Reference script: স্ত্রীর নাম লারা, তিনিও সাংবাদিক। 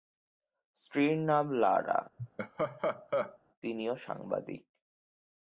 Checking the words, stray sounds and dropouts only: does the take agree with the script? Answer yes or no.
no